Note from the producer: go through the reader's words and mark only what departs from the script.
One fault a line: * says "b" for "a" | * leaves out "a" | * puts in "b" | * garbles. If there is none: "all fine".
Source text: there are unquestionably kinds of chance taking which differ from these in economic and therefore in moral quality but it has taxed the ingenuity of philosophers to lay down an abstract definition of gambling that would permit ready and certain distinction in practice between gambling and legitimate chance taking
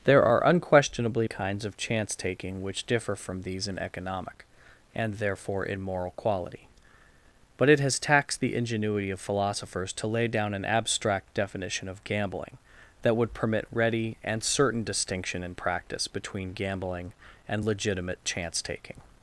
all fine